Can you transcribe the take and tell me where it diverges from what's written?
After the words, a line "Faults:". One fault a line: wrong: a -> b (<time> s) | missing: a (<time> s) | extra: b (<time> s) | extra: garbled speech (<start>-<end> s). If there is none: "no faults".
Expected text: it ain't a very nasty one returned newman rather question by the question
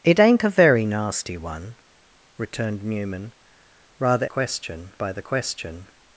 it ain't a very nasty one returned newman rather question by the question
Faults:
no faults